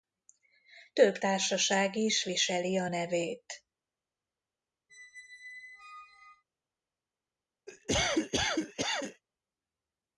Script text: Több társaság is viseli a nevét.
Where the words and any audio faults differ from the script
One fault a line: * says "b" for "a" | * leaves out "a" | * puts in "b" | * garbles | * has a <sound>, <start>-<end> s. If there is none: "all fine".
* has a squeak, 4.9-6.4 s
* has a cough, 7.7-9.2 s